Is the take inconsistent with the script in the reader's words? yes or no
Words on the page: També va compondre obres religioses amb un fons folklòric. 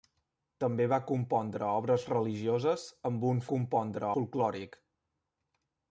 yes